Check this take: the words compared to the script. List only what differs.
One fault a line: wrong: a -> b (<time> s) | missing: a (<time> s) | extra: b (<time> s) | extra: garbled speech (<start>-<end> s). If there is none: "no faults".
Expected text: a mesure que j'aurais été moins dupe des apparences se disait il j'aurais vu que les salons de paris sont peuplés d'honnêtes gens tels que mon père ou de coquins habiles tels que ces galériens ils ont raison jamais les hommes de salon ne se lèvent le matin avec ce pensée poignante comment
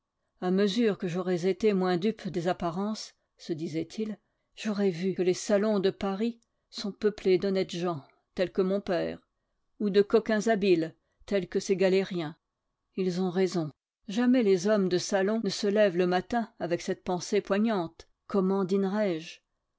wrong: ce -> cette (16.8 s)